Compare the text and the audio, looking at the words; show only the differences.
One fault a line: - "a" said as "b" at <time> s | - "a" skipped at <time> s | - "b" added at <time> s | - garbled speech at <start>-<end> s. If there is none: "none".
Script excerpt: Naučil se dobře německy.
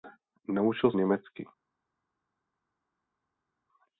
- "se dobře" skipped at 0.9 s